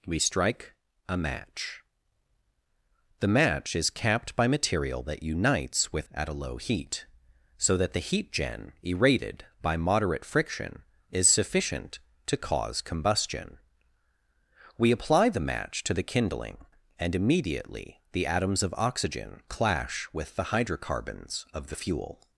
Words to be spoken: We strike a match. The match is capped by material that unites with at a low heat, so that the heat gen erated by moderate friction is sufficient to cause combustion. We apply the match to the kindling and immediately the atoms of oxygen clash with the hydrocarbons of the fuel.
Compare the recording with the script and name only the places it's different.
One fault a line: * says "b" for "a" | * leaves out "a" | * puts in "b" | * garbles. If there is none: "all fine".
all fine